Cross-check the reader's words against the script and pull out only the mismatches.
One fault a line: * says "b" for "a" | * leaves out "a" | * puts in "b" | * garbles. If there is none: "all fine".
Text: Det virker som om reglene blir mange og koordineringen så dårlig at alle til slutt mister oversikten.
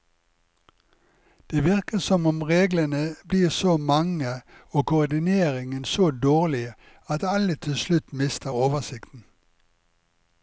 * puts in "så"